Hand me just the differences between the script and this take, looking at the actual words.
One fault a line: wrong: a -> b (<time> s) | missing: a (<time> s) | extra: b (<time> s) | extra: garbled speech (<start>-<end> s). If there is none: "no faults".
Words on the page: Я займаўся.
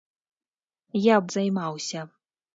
no faults